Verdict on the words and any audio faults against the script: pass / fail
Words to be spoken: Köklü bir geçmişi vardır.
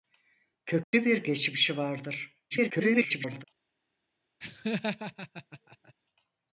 fail